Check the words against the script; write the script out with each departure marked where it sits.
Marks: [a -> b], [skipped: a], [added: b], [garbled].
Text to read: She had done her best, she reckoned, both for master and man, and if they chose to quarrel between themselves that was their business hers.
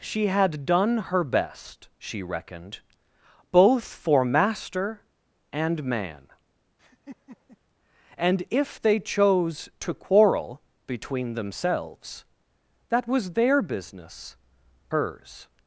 She had done her best, she reckoned, both for master and man, and if they chose to quarrel between themselves that was their business hers.